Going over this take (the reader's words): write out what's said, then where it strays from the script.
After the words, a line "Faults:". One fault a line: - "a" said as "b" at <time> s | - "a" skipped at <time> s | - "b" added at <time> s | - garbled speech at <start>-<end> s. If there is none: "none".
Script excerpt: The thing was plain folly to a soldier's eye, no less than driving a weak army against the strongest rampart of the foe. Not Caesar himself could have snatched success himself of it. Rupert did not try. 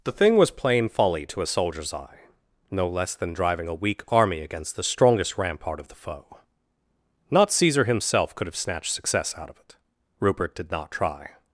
The thing was plain folly to a soldier's eye, no less than driving a weak army against the strongest rampart of the foe. Not Caesar himself could have snatched success out of it. Rupert did not try.
Faults:
- "himself" said as "out" at 9.4 s